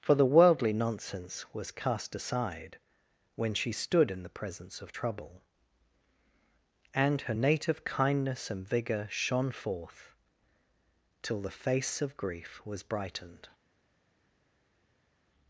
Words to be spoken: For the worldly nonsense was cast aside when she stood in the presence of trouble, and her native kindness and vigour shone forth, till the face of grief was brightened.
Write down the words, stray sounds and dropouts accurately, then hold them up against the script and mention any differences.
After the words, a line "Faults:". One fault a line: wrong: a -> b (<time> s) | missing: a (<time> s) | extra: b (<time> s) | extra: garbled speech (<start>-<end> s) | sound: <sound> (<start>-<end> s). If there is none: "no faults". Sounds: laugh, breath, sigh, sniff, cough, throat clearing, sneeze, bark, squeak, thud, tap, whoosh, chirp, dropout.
For the worldly nonsense was cast aside when she stood in the presence of trouble, and her native kindness and vigour shone forth, till the face of grief was brightened.
Faults:
no faults